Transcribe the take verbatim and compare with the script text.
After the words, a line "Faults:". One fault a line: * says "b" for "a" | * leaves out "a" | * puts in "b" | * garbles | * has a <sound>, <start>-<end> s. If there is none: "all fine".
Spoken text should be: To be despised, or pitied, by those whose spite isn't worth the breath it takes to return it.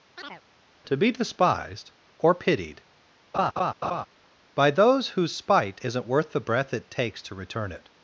To be despised, or pitied, by those whose spite isn't worth the breath it takes to return it.
Faults:
* has a chirp, 0.2-0.4 s
* has a laugh, 3.3-4.1 s